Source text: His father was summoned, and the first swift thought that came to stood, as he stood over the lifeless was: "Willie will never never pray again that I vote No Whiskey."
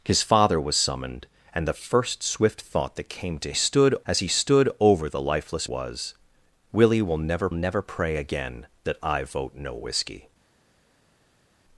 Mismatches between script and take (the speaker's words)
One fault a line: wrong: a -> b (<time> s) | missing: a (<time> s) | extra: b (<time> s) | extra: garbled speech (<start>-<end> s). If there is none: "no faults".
no faults